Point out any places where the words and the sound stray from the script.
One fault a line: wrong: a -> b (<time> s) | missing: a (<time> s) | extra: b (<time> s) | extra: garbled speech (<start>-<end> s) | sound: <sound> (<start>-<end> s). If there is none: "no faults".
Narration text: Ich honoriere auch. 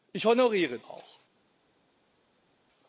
no faults